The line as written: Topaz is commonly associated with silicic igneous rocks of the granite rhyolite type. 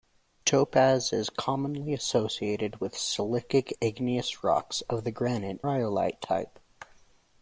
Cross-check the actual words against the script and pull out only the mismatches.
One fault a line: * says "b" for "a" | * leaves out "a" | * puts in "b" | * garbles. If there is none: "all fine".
all fine